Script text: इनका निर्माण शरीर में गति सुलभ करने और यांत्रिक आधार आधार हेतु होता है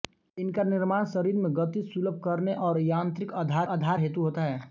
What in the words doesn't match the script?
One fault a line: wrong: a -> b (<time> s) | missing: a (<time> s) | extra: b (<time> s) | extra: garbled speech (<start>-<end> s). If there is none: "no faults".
no faults